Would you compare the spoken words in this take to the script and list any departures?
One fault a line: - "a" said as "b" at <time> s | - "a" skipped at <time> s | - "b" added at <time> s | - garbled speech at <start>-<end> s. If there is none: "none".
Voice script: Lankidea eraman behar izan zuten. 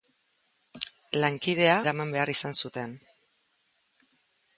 none